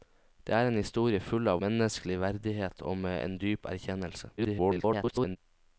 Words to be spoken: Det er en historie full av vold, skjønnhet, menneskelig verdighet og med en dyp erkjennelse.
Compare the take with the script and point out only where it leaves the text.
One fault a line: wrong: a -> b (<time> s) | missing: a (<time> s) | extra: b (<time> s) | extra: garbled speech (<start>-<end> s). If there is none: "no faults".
missing: vold skjønnhet (1.6 s)
extra: garbled speech (4.4-5.4 s)